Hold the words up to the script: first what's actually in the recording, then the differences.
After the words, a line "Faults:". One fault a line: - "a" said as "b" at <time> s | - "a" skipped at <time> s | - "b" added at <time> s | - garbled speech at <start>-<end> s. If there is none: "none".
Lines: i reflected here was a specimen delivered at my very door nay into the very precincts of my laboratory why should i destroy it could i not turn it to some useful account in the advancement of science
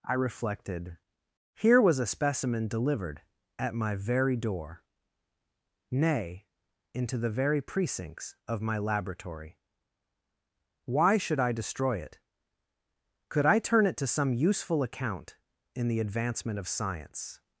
i reflected here was a specimen delivered at my very door nay into the very precincts of my laboratory why should i destroy it could i turn it to some useful account in the advancement of science
Faults:
- "not" skipped at 13.6 s